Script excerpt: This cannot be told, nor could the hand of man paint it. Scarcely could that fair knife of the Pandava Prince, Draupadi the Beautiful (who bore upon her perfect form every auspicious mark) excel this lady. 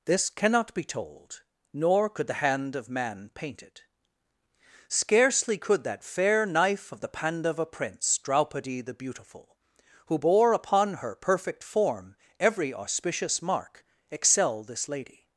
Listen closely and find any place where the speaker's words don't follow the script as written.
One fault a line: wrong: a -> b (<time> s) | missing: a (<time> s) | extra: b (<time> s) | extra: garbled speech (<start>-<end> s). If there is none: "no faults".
no faults